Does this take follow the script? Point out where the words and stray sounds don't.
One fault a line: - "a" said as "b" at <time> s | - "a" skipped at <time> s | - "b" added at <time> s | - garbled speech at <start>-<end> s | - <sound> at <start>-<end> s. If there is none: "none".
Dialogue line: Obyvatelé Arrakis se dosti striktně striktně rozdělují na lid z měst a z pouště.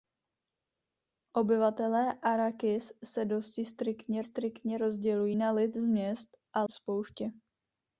none